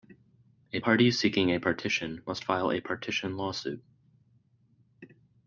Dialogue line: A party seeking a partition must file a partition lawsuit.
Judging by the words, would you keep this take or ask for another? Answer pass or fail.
pass